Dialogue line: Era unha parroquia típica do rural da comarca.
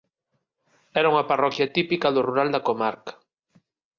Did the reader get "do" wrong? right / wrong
right